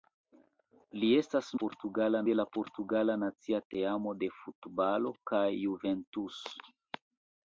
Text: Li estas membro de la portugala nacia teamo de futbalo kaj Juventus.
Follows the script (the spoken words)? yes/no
no